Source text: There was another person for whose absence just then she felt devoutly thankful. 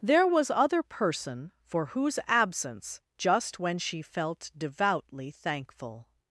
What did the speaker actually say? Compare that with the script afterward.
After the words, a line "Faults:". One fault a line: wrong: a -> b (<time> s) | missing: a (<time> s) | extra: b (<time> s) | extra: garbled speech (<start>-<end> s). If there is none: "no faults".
There was other person for whose absence just when she felt devoutly thankful.
Faults:
wrong: another -> other (0.5 s)
wrong: then -> when (3.6 s)